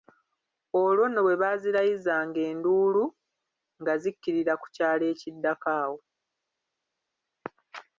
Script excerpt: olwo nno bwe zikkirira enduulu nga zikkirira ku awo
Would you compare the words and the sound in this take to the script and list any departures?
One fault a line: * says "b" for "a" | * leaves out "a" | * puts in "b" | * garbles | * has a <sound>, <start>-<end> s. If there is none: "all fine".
* says "baazirayizanga" for "zikkirira"
* puts in "kyalo ekiddako"